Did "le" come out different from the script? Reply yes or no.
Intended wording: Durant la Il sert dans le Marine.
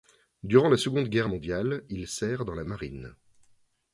yes